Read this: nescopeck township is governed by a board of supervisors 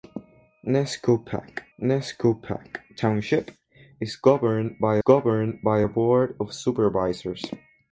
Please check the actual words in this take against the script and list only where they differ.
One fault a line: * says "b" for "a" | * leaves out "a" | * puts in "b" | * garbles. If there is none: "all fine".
* puts in "nescopeck"
* puts in "governed by"